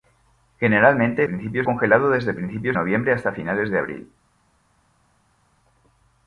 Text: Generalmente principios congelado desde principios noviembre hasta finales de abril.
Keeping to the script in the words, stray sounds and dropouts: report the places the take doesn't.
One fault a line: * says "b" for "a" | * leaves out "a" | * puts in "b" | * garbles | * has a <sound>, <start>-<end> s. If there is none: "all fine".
all fine